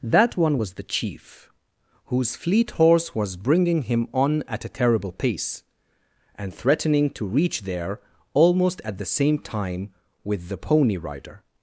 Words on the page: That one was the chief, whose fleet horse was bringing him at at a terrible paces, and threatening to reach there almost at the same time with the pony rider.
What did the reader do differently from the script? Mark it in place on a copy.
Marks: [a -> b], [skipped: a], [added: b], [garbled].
That one was the chief, whose fleet horse was bringing him [at -> on] at a terrible [paces, -> pace] and threatening to reach there almost at the same time with the pony rider.